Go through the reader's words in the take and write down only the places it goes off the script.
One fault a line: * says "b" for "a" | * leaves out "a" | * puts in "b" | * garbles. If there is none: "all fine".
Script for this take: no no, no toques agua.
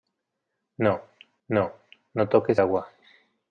all fine